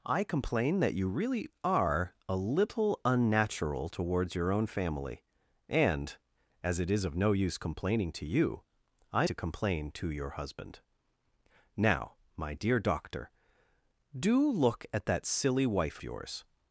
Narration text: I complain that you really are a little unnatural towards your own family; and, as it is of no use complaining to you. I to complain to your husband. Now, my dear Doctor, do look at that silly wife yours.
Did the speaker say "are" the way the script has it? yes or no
yes